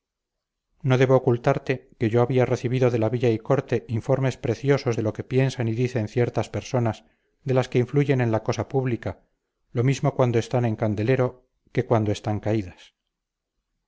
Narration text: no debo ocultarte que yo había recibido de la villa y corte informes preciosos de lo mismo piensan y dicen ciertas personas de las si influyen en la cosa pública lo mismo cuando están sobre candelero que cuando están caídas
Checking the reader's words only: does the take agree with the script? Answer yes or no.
no